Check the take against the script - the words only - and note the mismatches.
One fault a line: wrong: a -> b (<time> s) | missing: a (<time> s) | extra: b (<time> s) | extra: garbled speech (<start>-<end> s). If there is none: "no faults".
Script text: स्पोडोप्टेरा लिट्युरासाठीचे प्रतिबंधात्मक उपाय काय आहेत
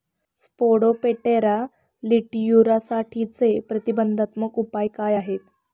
no faults